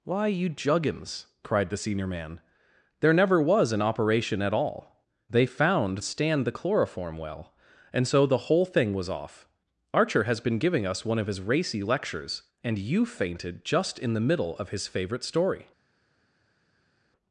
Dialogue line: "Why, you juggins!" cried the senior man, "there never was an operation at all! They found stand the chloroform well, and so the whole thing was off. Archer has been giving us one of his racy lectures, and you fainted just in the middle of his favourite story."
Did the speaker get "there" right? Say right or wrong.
right